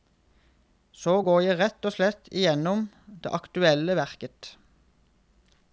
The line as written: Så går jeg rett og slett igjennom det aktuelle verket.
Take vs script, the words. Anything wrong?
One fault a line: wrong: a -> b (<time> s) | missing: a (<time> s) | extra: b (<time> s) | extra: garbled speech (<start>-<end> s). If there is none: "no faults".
no faults